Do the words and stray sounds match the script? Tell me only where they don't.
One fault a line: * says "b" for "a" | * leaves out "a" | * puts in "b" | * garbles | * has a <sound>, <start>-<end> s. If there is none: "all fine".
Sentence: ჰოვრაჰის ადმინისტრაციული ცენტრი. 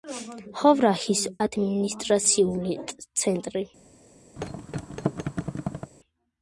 * has a thud, 4.4-5.9 s